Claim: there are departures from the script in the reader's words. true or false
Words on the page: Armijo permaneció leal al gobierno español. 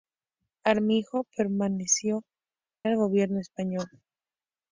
true